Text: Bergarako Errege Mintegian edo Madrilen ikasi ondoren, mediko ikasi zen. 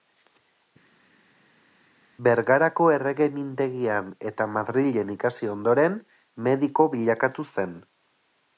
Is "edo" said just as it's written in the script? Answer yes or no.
no